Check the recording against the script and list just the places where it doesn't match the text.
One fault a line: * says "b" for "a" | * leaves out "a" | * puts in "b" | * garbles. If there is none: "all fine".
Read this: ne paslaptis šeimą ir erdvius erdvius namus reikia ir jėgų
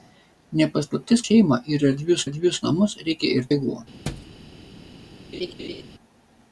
all fine